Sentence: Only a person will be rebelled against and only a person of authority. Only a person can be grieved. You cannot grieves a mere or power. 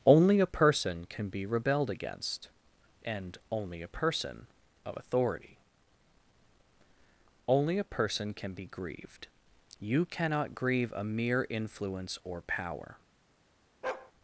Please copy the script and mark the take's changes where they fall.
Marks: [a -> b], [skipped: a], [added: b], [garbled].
Only a person [will -> can] be rebelled against and only a person of authority. Only a person can be grieved. You cannot [grieves -> grieve] a mere [added: influence] or power.